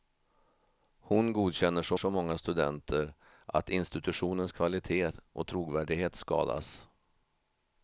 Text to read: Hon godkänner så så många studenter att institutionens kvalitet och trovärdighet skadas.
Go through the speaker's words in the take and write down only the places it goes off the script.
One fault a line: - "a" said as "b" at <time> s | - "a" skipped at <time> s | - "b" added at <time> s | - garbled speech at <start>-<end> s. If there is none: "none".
none